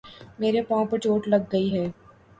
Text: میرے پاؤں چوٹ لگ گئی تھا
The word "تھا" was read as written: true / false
false